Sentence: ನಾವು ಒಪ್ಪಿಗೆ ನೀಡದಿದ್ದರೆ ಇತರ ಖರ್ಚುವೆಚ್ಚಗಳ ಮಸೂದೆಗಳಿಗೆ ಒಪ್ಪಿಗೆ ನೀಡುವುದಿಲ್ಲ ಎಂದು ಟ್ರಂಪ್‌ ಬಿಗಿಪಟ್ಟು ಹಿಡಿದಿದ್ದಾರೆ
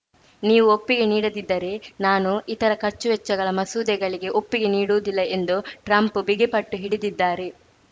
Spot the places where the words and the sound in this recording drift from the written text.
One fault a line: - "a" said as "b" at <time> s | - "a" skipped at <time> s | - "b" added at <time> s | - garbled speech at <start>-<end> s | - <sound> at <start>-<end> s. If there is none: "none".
- "ನಾವು" said as "ನೀವು" at 0.4 s
- "ನಾನು" added at 2.0 s